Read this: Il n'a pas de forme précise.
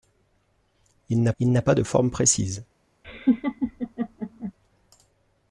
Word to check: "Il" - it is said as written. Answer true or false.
true